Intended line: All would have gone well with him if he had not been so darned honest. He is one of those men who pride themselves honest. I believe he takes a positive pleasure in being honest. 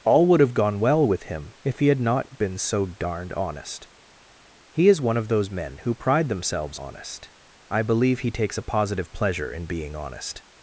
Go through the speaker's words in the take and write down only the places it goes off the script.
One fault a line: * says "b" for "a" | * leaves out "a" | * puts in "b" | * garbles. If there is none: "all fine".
all fine